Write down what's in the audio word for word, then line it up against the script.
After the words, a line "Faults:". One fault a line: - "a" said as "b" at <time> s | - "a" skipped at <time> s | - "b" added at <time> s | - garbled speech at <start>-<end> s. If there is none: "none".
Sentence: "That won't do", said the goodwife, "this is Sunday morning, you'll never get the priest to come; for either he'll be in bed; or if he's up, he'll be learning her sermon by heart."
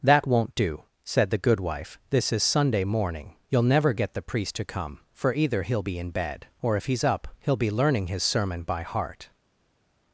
"That won't do", said the goodwife, "this is Sunday morning, you'll never get the priest to come; for either he'll be in bed; or if he's up, he'll be learning his sermon by heart."
Faults:
- "her" said as "his" at 8.1 s